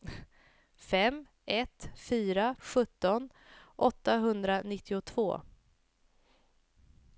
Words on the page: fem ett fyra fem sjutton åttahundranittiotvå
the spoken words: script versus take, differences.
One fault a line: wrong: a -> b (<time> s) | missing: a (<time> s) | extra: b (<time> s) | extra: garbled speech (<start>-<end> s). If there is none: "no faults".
missing: fem (2.5 s)